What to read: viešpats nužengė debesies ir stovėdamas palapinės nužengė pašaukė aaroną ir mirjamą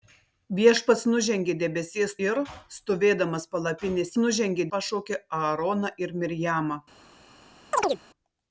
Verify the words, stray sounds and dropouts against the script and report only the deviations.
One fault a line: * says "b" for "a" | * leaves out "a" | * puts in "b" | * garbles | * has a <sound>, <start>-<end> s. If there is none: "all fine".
* has a chirp, 7.7-8.0 s